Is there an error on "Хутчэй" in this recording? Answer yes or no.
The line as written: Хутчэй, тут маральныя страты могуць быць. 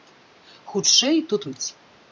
no